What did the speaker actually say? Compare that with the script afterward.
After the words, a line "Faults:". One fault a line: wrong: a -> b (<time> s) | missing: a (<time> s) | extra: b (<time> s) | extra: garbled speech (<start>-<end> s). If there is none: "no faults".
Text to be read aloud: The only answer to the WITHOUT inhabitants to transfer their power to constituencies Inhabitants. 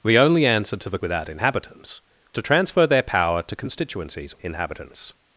The only answer to the WITHOUT inhabitants to transfer their power to constituencies Inhabitants.
Faults:
no faults